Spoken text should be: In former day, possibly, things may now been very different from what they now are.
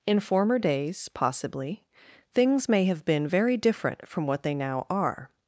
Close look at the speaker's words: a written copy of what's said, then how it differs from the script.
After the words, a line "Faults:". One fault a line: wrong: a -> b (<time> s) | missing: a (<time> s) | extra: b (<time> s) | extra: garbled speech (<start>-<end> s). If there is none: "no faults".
In former days, possibly, things may have been very different from what they now are.
Faults:
wrong: day -> days (0.6 s)
wrong: now -> have (2.9 s)